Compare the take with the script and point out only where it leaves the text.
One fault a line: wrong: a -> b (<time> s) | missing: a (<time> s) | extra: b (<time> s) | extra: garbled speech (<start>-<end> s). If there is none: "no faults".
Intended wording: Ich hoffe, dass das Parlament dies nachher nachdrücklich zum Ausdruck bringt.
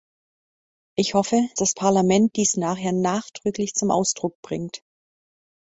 missing: dass (1.5 s)